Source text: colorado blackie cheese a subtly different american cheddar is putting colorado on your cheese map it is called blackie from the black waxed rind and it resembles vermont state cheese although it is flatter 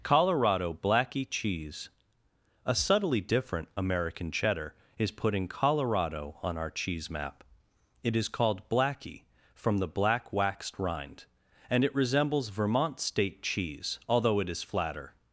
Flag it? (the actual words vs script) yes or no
yes